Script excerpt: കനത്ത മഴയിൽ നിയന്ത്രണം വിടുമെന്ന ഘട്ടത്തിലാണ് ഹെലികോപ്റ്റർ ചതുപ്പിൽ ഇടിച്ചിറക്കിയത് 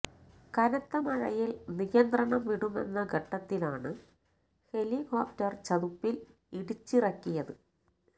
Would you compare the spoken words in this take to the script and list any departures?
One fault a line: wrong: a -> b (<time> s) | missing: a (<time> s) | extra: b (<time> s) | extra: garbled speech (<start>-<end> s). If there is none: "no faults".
no faults